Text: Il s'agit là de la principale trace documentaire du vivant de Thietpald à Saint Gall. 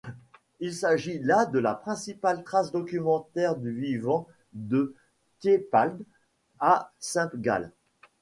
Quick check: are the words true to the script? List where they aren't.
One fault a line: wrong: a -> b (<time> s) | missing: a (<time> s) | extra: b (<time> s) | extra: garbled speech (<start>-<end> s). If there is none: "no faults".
no faults